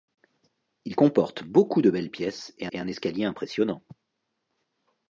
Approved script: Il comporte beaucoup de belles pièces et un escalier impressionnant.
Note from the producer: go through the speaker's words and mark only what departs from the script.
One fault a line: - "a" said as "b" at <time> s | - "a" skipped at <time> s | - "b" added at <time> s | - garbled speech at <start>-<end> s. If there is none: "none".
- "et" added at 2.7 s